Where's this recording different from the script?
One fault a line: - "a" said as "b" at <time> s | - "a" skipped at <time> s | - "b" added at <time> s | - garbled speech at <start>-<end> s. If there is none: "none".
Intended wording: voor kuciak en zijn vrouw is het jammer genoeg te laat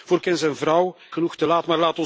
- "kuciak" skipped at 0.2 s
- "is het jammer" skipped at 1.0 s